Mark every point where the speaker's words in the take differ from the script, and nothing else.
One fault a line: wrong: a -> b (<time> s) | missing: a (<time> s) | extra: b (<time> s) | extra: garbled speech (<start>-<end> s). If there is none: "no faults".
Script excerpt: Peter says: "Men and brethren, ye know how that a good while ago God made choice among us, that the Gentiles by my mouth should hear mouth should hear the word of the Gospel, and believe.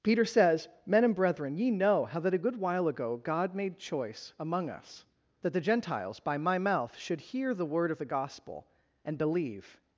missing: mouth should hear (7.5 s)